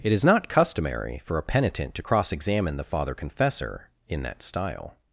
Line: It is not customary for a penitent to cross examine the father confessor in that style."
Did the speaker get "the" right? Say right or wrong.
right